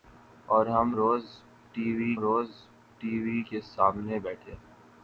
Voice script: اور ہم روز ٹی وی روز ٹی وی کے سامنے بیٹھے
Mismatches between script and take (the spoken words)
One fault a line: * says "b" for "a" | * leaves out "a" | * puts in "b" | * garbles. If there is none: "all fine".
all fine